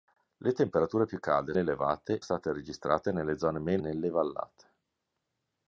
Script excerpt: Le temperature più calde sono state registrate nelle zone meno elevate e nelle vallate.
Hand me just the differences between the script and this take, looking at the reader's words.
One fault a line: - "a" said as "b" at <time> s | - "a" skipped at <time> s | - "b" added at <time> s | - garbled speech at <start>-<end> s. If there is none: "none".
- "sono" said as "elevate" at 1.6 s
- "elevate e" skipped at 3.8 s